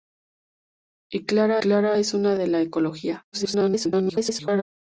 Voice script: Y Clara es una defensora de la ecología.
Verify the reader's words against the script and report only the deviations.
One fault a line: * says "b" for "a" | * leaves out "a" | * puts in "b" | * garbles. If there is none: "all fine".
* puts in "Clara"
* leaves out "defensora"
* garbles